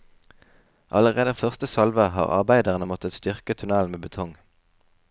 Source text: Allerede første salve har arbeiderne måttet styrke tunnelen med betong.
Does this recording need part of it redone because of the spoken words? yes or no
no